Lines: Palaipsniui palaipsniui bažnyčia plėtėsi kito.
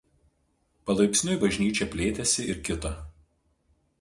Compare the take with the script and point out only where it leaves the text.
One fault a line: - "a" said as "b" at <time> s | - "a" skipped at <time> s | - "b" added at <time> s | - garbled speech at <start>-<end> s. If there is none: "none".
- "palaipsniui" skipped at 1.4 s
- "ir" added at 2.5 s